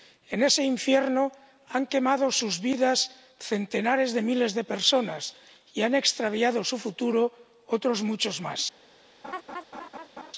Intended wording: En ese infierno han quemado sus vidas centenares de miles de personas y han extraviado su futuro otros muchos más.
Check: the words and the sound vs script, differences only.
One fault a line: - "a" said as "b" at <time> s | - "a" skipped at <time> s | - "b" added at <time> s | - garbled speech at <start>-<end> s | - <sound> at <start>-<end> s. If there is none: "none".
- laugh at 9.2-10.3 s